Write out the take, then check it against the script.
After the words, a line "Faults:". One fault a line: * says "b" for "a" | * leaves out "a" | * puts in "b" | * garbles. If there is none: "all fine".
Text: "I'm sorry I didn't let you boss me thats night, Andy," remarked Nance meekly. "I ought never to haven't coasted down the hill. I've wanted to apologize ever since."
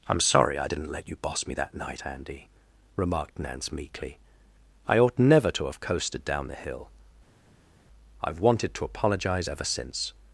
"I'm sorry I didn't let you boss me that night, Andy," remarked Nance meekly. "I ought never to have coasted down the hill. I've wanted to apologize ever since."
Faults:
* says "that" for "thats"
* says "have" for "haven't"